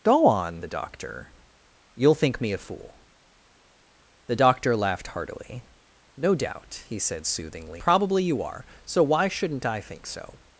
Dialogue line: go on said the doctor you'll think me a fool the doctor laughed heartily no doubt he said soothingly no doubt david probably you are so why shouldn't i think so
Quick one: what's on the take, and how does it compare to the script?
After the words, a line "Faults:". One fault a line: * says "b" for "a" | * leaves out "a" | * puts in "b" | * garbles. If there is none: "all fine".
go on the doctor you'll think me a fool the doctor laughed heartily no doubt he said soothingly probably you are so why shouldn't i think so
Faults:
* leaves out "said"
* leaves out "no doubt david"